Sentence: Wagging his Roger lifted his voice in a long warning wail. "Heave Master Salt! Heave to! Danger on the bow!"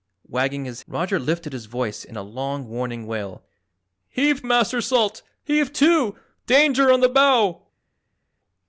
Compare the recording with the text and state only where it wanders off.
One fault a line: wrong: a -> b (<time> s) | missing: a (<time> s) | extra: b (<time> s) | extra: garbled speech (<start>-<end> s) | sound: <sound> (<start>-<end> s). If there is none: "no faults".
no faults